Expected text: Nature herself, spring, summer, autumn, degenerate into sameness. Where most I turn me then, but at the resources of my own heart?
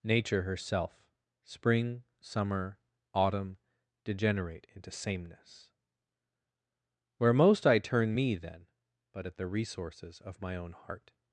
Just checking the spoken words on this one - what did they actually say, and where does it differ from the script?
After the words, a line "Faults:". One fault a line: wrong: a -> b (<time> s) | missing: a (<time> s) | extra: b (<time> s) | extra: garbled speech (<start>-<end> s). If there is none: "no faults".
Nature herself, spring, summer, autumn, degenerate into sameness. Where most I turn me then, but at the resources of my own heart?
Faults:
no faults